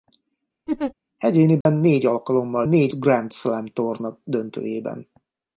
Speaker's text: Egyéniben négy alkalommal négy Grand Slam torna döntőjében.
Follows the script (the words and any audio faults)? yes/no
no